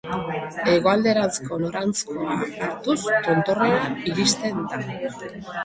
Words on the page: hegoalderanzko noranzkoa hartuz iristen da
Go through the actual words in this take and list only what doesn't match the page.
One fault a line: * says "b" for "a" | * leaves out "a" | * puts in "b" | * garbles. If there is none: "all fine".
* puts in "tontorrera"